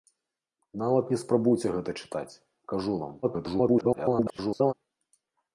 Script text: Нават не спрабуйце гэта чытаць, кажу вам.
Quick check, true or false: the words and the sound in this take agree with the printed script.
false